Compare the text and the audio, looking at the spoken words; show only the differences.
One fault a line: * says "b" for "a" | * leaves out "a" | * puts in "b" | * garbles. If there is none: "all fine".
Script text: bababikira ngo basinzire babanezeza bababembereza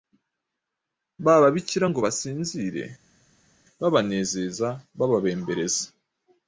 all fine